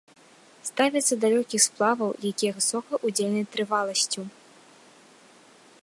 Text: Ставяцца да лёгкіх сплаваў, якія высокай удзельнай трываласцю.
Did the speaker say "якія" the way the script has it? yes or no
yes